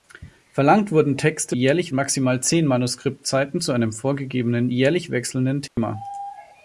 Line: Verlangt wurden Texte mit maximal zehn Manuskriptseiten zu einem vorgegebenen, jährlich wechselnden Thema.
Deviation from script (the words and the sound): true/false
true